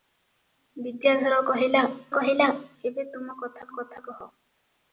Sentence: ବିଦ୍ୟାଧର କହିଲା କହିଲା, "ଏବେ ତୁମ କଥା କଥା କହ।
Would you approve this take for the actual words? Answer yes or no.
yes